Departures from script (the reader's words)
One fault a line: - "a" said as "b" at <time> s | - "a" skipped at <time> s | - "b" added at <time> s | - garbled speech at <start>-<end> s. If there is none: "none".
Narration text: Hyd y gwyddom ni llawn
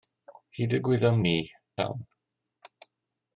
none